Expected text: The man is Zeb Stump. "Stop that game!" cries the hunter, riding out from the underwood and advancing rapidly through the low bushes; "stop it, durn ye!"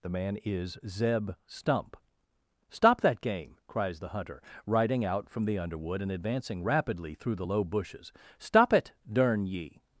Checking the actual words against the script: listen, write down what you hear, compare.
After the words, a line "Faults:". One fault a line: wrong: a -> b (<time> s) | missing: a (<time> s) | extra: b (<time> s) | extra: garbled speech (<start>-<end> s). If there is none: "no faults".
The man is Zeb Stump. "Stop that game!" cries the hunter, riding out from the underwood and advancing rapidly through the low bushes; "stop it, durn ye!"
Faults:
no faults